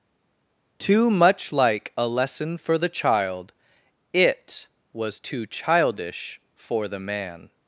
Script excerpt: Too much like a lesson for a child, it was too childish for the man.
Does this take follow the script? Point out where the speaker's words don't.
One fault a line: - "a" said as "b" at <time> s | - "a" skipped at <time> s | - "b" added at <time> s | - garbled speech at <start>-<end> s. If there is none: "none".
- "a" said as "the" at 2.8 s